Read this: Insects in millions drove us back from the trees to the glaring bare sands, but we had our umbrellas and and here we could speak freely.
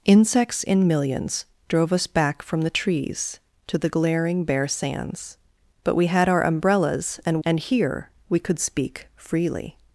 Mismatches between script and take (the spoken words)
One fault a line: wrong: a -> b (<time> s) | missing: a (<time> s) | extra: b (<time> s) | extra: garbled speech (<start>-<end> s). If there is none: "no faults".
no faults